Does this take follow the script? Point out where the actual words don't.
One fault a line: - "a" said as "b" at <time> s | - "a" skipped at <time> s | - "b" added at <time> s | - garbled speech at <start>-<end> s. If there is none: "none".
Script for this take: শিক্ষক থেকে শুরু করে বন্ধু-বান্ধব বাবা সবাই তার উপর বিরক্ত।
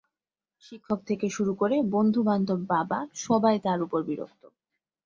none